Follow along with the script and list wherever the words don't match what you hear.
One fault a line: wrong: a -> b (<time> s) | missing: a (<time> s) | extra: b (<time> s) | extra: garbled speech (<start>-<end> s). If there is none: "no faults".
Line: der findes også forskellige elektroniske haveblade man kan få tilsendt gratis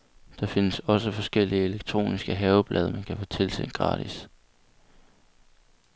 no faults